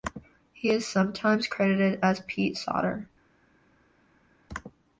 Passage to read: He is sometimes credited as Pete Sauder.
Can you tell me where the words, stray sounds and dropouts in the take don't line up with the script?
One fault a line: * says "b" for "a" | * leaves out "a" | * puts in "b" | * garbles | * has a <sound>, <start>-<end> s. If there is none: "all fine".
all fine